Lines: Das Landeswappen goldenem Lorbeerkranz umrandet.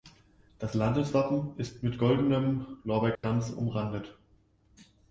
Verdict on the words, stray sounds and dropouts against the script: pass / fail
fail